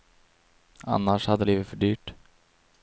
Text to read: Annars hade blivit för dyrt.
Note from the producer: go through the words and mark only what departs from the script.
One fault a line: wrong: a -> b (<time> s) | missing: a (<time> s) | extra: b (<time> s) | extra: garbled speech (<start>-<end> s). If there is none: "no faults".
no faults